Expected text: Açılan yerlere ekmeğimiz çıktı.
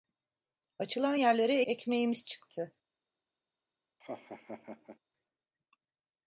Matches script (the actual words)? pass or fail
pass